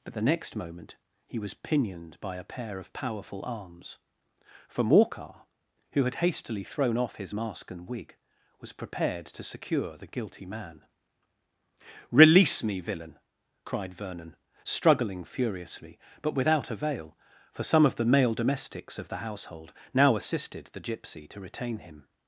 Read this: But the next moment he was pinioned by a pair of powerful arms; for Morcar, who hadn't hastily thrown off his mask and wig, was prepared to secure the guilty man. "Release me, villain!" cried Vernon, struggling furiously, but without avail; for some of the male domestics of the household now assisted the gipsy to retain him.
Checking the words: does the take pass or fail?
fail